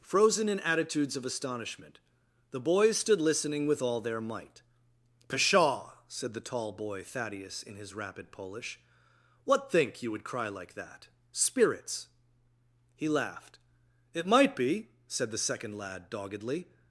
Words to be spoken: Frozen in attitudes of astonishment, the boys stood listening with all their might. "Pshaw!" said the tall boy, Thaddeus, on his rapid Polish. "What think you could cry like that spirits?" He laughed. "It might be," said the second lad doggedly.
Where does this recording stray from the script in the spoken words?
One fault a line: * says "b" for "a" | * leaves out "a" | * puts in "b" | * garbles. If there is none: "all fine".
* says "in" for "on"
* says "would" for "could"